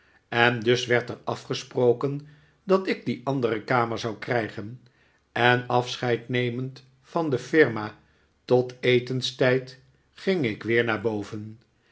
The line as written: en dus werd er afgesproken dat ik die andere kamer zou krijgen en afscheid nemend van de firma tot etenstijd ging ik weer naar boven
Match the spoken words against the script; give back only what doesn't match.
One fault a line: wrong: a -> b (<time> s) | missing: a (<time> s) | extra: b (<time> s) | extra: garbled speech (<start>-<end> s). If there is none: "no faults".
no faults